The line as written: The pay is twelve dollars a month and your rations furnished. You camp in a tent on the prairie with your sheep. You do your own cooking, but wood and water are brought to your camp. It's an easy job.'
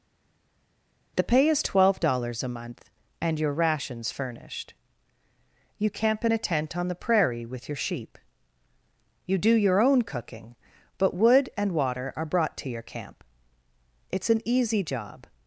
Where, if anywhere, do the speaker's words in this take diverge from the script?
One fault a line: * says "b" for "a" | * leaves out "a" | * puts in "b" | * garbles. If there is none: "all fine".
all fine